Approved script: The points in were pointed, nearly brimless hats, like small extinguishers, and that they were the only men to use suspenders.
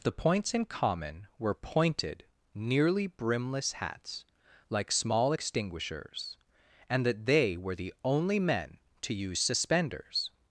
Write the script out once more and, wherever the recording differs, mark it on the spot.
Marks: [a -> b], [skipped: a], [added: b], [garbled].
The points in [added: common] were pointed, nearly brimless hats, like small extinguishers, and that they were the only men to use suspenders.